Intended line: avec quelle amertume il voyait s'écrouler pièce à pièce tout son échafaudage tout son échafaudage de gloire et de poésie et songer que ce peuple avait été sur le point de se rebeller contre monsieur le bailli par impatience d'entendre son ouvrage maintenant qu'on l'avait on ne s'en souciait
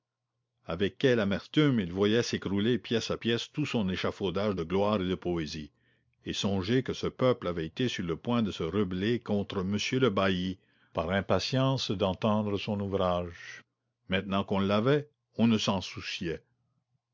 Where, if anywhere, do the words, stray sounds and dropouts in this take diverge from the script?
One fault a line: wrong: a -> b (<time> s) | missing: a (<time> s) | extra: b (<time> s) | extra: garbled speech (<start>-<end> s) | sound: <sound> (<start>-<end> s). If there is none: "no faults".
missing: tout son échafaudage (4.5 s)